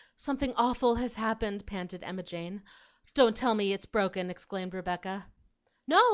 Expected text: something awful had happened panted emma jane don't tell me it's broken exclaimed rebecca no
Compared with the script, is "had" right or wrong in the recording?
wrong